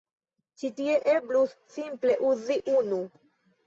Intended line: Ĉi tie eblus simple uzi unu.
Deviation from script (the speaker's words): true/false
false